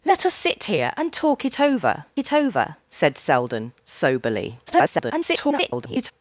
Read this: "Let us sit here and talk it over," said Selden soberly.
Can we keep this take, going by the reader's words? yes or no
no